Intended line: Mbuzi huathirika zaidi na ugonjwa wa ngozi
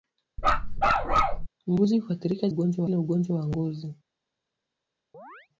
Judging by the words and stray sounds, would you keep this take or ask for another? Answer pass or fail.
fail